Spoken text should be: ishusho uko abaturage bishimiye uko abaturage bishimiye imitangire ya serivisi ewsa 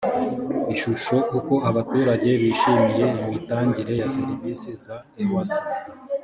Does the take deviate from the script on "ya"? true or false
false